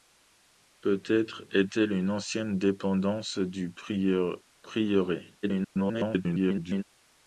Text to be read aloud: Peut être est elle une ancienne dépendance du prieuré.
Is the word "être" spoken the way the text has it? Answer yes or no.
yes